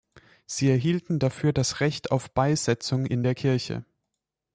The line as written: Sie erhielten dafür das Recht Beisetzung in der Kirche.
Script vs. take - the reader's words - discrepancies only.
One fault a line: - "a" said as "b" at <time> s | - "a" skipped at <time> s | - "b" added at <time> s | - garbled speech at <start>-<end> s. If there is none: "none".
- "auf" added at 2.1 s